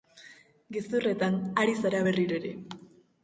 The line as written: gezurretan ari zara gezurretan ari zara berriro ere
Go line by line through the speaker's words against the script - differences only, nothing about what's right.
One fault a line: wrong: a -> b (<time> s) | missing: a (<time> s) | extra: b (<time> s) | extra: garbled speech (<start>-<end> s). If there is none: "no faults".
missing: gezurretan ari zara (2.0 s)